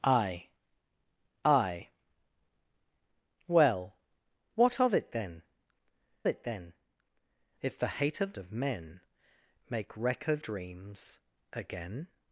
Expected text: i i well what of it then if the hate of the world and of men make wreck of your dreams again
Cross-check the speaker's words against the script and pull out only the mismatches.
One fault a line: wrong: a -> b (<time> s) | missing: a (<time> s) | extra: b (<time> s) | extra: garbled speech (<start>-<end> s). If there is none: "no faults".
extra: it then (6.3 s)
missing: the world and (8.3 s)
missing: your (10.4 s)